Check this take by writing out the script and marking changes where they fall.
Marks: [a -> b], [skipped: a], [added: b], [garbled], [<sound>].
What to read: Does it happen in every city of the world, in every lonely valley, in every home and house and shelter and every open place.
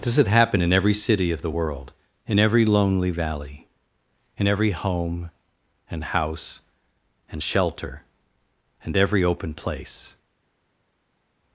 Does it happen in every city of the world, in every lonely valley, in every home and house and shelter and every open place.